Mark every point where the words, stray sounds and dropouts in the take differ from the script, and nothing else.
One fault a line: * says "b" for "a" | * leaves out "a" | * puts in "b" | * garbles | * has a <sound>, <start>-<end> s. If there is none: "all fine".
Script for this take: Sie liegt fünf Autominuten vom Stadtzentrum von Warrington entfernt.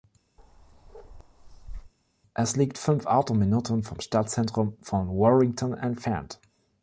* has a bark, 0.4-1.9 s
* says "Es" for "Sie"